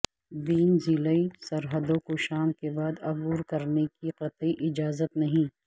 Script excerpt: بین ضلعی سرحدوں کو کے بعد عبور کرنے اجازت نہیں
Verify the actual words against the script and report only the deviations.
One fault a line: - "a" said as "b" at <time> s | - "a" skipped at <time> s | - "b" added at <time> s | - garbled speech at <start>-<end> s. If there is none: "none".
- "شام" added at 2.2 s
- "کی قطعی" added at 3.9 s